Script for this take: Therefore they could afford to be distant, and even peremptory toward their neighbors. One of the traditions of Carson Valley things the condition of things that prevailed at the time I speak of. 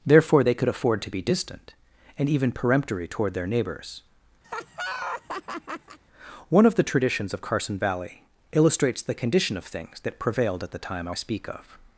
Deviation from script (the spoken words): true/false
true